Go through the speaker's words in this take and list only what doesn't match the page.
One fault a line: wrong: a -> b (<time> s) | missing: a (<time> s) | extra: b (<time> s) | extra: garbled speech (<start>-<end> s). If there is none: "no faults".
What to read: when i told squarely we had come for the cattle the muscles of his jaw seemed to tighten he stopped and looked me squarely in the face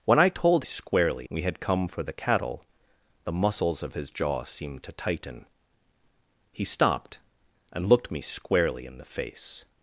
no faults